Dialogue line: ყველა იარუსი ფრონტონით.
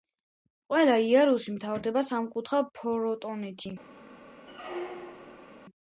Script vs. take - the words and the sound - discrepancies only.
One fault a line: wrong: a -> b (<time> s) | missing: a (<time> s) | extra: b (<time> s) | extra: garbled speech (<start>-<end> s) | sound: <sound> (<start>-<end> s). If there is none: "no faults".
extra: მთავრდება სამკუთხა (1.6 s)
sound: squeak (4.5-5.5 s)